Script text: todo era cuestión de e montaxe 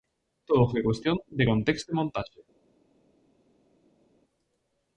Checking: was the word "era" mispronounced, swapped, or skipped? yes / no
yes